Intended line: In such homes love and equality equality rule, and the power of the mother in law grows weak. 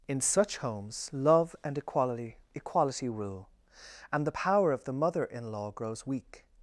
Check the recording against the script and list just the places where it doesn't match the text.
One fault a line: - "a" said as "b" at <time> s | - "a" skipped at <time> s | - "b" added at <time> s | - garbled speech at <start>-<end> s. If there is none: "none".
none